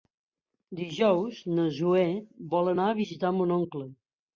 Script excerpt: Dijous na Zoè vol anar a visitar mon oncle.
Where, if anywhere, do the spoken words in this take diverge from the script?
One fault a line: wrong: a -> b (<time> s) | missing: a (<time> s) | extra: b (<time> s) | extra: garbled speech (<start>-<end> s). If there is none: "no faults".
no faults